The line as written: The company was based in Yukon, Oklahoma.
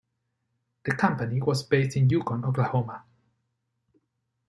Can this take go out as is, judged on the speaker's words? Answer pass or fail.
pass